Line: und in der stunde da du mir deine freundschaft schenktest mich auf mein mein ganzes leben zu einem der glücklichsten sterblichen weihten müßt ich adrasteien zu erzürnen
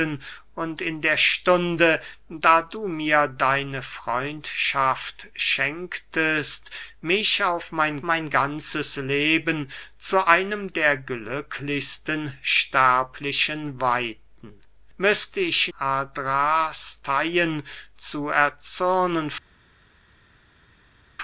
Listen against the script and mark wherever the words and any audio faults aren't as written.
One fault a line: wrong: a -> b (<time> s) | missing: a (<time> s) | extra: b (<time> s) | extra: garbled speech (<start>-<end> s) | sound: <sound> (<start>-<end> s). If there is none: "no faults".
no faults